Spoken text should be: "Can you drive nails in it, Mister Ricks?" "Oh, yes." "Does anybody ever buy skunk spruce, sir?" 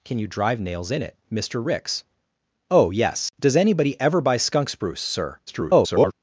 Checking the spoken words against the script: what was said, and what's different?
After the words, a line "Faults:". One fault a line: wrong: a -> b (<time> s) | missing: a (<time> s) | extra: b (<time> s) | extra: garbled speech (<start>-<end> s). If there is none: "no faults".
"Can you drive nails in it, Mister Ricks?" "Oh, yes." "Does anybody ever buy skunk spruce, sir?" [garbled]
Faults:
extra: garbled speech (5.5-6.1 s)